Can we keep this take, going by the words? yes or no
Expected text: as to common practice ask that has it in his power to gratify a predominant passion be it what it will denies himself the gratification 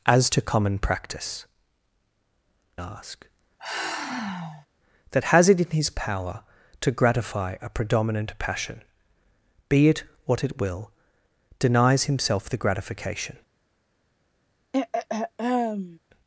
yes